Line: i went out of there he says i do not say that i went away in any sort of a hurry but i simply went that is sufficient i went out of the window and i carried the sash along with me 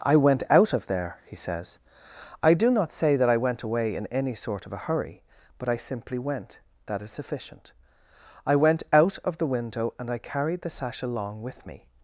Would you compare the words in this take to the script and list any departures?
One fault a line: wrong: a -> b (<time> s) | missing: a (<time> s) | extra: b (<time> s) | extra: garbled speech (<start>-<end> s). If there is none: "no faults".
no faults